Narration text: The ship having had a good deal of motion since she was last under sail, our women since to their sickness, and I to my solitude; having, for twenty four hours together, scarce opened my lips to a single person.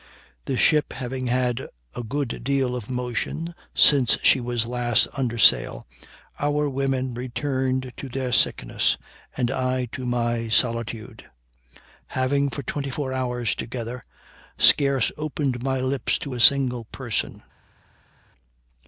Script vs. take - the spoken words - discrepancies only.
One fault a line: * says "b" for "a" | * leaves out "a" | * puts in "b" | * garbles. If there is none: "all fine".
* says "returned" for "since"